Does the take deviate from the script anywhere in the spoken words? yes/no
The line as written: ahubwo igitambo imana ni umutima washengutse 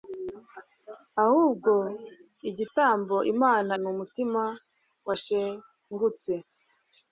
no